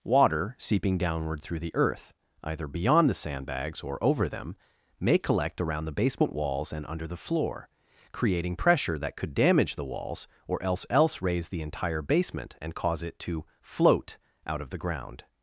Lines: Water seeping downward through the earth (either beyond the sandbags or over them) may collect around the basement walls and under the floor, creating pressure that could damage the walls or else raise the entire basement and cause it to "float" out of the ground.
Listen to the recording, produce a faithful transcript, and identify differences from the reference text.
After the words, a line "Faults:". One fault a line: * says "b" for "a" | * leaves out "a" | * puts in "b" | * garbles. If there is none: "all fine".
Water seeping downward through the earth (either beyond the sandbags or over them) may collect around the basement walls and under the floor, creating pressure that could damage the walls or else else raise the entire basement and cause it to "float" out of the ground.
Faults:
* puts in "else"